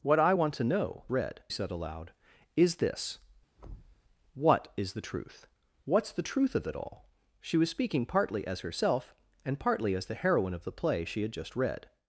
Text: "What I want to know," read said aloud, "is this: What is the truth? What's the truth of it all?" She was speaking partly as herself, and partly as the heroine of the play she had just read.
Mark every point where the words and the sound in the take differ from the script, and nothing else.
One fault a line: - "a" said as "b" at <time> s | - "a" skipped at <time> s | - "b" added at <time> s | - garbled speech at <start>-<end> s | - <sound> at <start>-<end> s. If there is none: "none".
- thud at 3.6-4.0 s